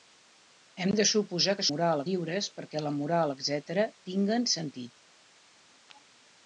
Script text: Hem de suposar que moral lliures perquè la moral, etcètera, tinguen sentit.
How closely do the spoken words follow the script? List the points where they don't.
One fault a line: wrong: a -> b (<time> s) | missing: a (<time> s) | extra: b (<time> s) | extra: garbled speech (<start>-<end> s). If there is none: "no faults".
no faults